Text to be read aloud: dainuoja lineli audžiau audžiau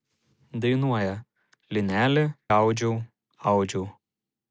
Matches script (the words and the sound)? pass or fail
pass